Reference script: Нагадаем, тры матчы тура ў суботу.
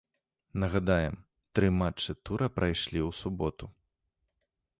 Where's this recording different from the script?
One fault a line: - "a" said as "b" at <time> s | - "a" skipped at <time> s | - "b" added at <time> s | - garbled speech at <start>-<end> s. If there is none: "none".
- "прайшлі" added at 2.6 s